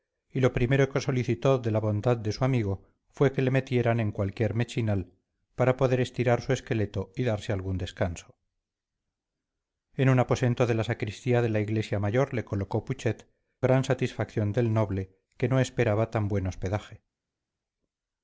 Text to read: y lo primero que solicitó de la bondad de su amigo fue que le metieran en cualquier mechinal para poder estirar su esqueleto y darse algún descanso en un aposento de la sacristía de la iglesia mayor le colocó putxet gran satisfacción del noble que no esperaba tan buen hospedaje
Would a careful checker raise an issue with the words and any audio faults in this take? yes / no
no